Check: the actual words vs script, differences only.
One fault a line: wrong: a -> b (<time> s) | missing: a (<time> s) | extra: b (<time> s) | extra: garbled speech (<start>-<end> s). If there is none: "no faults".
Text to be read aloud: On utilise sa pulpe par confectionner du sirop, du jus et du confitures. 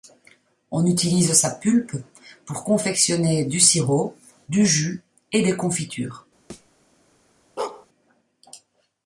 wrong: par -> pour (2.5 s)
wrong: du -> des (5.4 s)